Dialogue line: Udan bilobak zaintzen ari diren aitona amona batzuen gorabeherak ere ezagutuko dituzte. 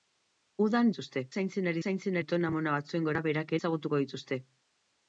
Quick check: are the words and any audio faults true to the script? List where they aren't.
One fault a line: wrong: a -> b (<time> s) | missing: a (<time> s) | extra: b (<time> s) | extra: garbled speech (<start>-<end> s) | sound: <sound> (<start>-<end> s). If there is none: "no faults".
wrong: bilobak -> dituzte (0.9 s)
wrong: diren -> zaintzen (1.8 s)
missing: ere (3.6 s)